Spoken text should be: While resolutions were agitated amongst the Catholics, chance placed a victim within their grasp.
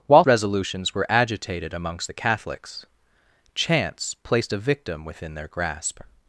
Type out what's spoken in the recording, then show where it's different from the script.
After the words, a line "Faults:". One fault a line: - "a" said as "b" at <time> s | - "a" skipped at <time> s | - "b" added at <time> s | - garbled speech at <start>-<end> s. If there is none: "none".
While resolutions were agitated amongst the Catholics, chance placed a victim within their grasp.
Faults:
none